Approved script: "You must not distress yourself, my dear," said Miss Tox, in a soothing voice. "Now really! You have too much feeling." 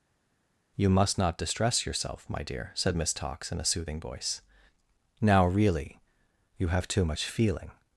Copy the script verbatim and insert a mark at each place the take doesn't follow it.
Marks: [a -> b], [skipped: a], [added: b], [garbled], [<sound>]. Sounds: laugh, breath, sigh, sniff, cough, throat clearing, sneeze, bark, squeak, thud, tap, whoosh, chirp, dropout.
"You must not distress yourself, my dear," said Miss Tox, in a soothing voice. "Now really! You have too much feeling."